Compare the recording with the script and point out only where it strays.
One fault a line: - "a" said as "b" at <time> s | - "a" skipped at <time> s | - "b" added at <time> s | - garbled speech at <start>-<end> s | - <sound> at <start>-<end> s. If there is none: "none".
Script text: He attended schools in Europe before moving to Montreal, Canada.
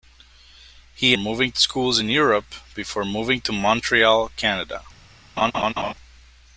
- "attended" said as "moving" at 1.1 s
- laugh at 5.4-5.9 s